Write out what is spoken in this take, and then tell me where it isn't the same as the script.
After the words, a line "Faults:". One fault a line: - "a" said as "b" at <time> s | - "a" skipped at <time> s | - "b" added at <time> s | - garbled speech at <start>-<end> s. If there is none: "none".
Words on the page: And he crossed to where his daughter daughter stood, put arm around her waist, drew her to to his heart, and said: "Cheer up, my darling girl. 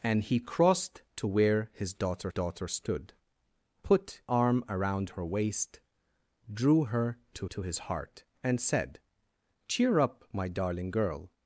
And he crossed to where his daughter daughter stood, put arm around her waist, drew her to to his heart, and said: "Cheer up, my darling girl.
Faults:
none